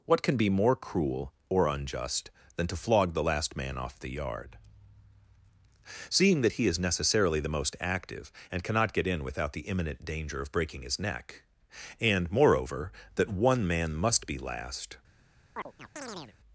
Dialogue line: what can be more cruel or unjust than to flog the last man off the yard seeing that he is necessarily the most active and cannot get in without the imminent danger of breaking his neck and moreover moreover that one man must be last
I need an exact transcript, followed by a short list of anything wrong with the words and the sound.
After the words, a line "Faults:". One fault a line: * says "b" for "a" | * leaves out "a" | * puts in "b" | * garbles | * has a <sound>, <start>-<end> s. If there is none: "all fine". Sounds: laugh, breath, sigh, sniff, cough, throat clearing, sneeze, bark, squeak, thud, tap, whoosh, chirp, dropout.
what can be more cruel or unjust than to flog the last man off the yard seeing that he is necessarily the most active and cannot get in without the imminent danger of breaking his neck and moreover that one man must be last
Faults:
* leaves out "moreover"
* has a chirp, 15.5-16.4 s